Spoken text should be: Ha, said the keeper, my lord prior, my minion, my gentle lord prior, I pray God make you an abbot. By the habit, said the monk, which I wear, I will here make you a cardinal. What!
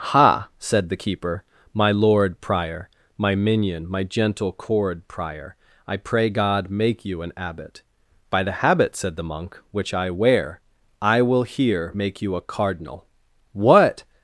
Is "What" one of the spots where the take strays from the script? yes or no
no